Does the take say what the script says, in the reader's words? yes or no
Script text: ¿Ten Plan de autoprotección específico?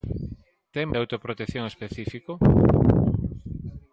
no